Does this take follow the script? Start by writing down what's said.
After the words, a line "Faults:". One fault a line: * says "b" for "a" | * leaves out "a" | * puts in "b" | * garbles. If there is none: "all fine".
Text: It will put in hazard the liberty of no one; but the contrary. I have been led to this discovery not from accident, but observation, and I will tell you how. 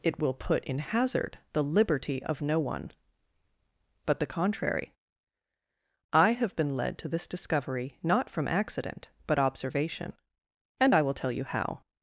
It will put in hazard the liberty of no one; but the contrary. I have been led to this discovery not from accident, but observation, and I will tell you how.
Faults:
all fine